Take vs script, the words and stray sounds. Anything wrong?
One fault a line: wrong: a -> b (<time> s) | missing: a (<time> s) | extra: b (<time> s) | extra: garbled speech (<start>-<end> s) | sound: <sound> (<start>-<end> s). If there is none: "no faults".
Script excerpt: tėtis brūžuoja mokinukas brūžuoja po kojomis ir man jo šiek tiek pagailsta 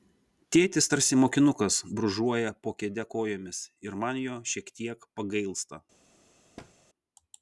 wrong: brūžuoja -> tarsi (0.9 s)
extra: kėde (2.8 s)
sound: thud (6.6-6.7 s)